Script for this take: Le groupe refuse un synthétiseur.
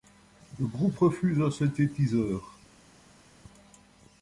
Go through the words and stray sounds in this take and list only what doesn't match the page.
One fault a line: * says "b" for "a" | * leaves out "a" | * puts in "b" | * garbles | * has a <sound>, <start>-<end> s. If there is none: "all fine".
all fine